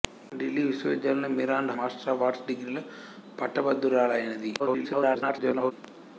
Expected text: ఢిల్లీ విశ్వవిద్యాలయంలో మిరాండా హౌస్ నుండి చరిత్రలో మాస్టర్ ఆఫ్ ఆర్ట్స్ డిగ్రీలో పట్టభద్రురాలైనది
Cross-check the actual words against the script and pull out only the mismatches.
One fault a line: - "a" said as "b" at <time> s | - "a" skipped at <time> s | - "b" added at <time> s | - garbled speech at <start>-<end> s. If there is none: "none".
- "హౌస్ నుండి చరిత్రలో" skipped at 1.7 s
- garbled speech at 4.6-5.7 s